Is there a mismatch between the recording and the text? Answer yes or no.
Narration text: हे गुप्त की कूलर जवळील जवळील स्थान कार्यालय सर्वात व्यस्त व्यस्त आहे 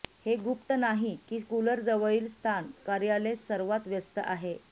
yes